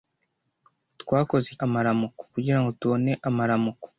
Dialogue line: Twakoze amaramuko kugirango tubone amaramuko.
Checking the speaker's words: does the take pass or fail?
pass